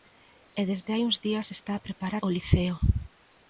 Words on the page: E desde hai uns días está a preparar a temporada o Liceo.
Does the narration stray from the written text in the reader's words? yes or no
yes